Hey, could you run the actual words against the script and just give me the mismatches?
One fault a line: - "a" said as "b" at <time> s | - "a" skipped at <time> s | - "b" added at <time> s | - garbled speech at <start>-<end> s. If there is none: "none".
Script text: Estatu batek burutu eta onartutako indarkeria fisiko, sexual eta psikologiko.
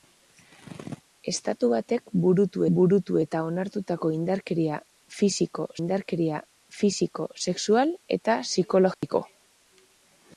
- "burutu" added at 2.8 s
- "indarkeria fisiko" added at 5.8 s